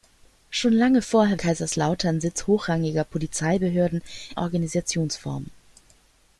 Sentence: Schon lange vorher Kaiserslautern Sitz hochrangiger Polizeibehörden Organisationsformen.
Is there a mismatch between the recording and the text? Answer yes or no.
no